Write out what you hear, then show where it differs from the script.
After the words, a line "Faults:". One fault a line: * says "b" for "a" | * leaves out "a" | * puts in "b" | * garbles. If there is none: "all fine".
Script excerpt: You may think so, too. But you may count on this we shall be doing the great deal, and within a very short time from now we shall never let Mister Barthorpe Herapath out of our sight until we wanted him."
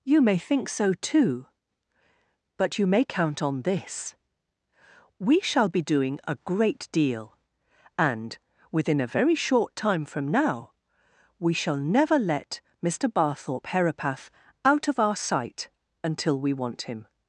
You may think so, too. But you may count on this we shall be doing a great deal, and within a very short time from now we shall never let Mister Barthorpe Herapath out of our sight until we want him."
Faults:
* says "a" for "the"
* says "want" for "wanted"